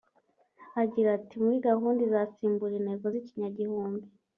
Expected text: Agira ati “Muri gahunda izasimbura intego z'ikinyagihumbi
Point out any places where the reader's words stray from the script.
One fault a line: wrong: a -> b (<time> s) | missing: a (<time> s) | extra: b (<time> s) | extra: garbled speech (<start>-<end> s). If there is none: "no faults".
no faults